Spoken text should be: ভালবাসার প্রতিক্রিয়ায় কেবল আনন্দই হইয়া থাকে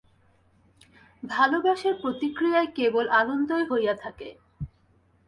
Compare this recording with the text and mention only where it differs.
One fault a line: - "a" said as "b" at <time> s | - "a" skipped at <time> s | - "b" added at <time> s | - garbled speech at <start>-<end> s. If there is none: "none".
none